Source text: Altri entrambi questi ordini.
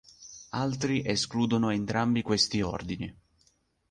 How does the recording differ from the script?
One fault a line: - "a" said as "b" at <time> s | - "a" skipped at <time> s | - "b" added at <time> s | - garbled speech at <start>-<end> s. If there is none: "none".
- "escludono" added at 1.1 s